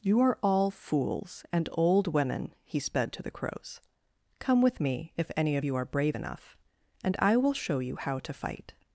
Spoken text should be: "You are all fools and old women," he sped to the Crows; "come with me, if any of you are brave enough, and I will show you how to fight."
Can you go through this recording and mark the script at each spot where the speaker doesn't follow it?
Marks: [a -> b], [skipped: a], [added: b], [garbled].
"You are all fools and old women," he sped to the Crows; "come with me, if any of you are brave enough, and I will show you how to fight."